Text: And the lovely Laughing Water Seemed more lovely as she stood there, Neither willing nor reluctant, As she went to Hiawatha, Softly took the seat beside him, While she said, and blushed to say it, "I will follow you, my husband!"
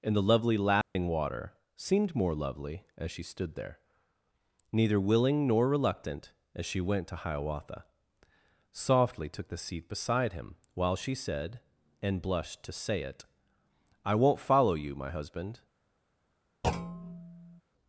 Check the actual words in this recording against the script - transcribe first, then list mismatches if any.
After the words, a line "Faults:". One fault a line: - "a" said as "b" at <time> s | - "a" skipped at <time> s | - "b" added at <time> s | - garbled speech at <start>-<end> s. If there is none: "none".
And the lovely Laughing Water Seemed more lovely as she stood there, Neither willing nor reluctant, As she went to Hiawatha, Softly took the seat beside him, While she said, and blushed to say it, "I won't follow you, my husband!"
Faults:
- "will" said as "won't" at 14.2 s